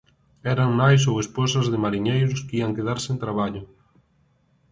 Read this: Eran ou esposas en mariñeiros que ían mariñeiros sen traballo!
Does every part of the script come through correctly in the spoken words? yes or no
no